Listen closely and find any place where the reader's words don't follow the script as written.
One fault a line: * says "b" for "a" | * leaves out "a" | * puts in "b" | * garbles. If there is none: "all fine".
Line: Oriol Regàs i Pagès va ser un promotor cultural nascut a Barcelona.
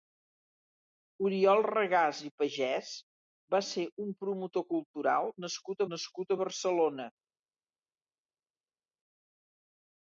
* puts in "nascut"